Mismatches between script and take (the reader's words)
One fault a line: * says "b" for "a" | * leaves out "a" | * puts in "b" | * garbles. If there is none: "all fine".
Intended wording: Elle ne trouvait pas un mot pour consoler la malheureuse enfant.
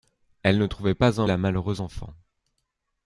* leaves out "mot pour consoler"